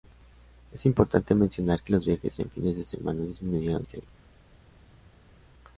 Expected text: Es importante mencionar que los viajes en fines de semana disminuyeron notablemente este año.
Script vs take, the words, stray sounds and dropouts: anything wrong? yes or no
yes